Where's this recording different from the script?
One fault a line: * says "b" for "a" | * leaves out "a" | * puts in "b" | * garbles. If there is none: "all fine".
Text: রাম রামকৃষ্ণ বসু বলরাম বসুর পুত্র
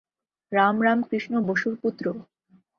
* leaves out "বসু বলরাম"